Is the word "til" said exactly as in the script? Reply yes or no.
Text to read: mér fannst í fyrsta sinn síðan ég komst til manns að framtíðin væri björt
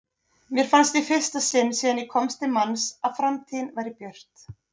yes